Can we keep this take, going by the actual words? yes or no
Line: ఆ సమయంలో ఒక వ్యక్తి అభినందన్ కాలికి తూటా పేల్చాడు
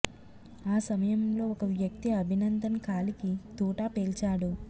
yes